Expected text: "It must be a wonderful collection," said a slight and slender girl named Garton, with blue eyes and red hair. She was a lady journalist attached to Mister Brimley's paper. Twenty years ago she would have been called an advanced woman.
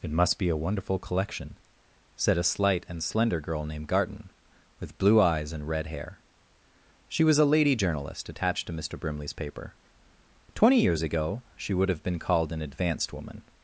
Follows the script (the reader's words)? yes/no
yes